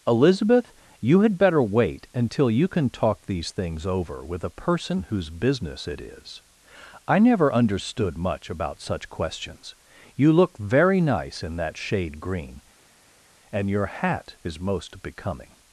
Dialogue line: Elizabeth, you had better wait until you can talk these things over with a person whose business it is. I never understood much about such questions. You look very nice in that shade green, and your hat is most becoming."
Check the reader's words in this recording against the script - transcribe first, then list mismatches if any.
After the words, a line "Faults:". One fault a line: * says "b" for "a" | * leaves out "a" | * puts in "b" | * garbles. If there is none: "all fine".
Elizabeth, you had better wait until you can talk these things over with a person whose business it is. I never understood much about such questions. You look very nice in that shade green, and your hat is most becoming."
Faults:
all fine